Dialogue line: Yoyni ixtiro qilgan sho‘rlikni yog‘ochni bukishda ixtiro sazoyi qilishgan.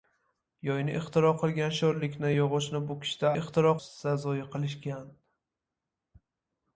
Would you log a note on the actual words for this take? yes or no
no